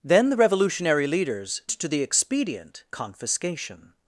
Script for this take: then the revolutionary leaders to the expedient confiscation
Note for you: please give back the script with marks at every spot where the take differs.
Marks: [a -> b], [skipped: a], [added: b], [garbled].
then the revolutionary leaders to the expedient confiscation